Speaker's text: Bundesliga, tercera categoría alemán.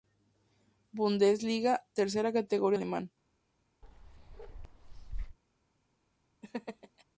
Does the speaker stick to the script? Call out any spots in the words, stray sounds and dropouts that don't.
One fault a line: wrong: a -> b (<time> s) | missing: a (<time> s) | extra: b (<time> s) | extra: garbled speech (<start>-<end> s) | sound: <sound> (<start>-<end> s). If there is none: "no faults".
sound: bark (3.8-5.4 s)
sound: laugh (6.4-7.0 s)